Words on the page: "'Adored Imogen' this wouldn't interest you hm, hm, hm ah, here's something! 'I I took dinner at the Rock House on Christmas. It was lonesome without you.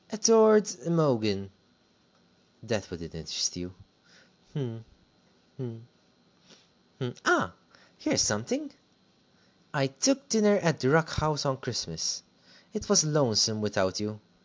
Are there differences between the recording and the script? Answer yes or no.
yes